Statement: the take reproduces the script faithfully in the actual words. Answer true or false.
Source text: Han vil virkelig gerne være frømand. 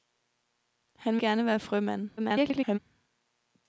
false